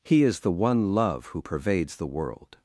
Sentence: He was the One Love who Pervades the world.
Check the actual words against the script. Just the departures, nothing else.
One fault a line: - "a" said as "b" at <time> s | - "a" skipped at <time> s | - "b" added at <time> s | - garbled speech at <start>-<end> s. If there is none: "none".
- "was" said as "is" at 0.2 s